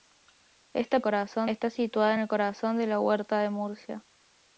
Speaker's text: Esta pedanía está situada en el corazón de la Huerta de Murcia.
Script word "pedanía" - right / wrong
wrong